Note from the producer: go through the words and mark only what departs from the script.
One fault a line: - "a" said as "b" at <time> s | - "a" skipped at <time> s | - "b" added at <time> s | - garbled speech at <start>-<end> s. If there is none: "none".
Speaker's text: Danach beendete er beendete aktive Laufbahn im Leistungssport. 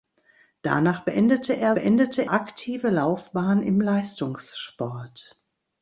none